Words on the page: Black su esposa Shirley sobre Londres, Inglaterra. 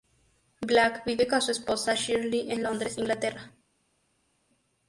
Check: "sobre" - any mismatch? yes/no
yes